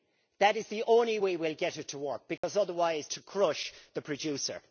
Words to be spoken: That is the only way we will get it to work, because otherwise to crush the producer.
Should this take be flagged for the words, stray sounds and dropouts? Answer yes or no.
yes